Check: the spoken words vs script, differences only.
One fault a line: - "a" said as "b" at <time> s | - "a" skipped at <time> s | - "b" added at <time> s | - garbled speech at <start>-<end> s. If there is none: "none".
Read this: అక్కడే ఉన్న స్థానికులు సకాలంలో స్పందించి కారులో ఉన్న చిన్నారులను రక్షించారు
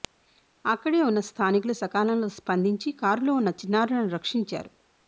none